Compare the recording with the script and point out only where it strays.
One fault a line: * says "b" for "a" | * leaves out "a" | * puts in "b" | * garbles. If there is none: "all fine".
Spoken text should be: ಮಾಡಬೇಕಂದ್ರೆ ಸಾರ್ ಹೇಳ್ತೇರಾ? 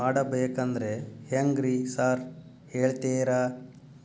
* puts in "ಹೆಂಗ್ರಿ"